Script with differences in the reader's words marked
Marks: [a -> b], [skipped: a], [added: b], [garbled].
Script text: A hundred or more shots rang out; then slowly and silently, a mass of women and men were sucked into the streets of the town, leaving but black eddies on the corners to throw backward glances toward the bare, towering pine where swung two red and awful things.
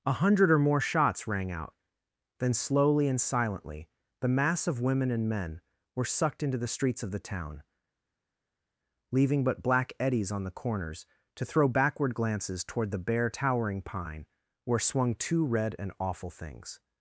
A hundred or more shots rang out; then slowly and silently, [a -> the] mass of women and men were sucked into the streets of the town, leaving but black eddies on the corners to throw backward glances toward the bare, towering pine where swung two red and awful things.